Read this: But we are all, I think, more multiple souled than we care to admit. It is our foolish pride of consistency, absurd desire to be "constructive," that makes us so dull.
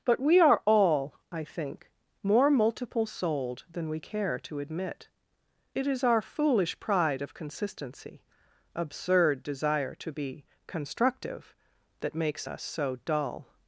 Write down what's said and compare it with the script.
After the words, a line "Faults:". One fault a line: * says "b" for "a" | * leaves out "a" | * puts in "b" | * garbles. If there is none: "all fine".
But we are all, I think, more multiple souled than we care to admit. It is our foolish pride of consistency, absurd desire to be "constructive," that makes us so dull.
Faults:
all fine